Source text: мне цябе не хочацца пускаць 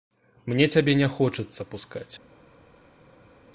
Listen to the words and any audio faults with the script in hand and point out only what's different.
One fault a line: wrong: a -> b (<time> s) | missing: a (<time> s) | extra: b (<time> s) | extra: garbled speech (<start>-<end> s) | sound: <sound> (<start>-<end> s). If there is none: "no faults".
no faults